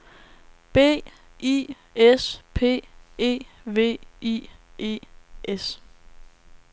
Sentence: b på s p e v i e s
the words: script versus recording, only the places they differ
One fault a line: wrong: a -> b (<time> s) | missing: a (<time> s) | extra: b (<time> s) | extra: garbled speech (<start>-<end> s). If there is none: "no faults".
wrong: på -> i (1.4 s)